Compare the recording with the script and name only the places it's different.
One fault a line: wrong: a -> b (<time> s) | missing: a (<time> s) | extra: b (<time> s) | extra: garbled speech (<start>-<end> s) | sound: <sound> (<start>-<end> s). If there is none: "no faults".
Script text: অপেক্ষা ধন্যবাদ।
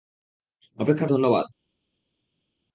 no faults